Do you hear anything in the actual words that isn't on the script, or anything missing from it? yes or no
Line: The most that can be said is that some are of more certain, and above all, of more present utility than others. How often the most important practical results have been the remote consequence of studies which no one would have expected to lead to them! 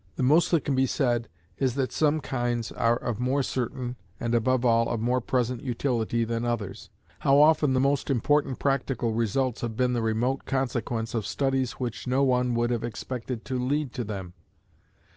yes